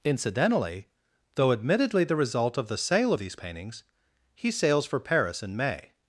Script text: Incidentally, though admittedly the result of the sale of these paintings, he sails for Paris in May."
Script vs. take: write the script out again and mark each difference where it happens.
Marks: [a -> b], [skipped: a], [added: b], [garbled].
Incidentally, though admittedly the result of the sale of these paintings, he sails for Paris in May."